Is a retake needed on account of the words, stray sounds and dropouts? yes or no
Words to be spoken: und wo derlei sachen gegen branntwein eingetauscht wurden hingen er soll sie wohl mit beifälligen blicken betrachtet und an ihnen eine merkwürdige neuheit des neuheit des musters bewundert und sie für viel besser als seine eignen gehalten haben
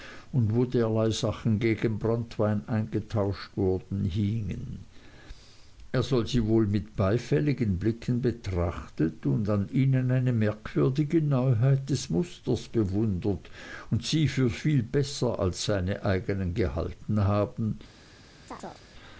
yes